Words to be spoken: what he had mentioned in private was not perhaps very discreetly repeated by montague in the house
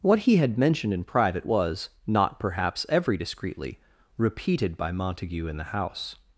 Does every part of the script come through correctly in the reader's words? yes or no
no